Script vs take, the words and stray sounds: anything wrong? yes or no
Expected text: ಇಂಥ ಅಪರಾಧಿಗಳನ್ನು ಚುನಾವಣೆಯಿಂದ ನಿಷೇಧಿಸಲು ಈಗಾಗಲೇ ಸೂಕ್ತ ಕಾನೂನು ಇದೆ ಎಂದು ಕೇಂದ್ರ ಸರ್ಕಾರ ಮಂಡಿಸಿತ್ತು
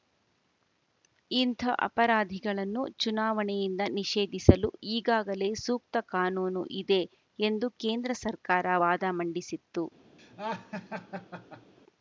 yes